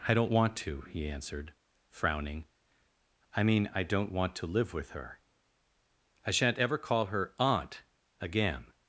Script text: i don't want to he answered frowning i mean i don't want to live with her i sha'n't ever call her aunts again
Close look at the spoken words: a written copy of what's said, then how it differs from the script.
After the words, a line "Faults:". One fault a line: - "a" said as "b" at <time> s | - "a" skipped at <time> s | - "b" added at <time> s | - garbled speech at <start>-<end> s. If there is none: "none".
i don't want to he answered frowning i mean i don't want to live with her i sha'n't ever call her aunt again
Faults:
- "aunts" said as "aunt" at 7.4 s